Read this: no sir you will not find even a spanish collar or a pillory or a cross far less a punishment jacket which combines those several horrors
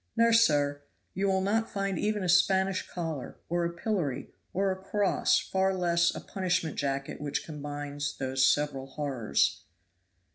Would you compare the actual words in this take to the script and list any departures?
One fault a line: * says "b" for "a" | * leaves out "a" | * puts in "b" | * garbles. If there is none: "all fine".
all fine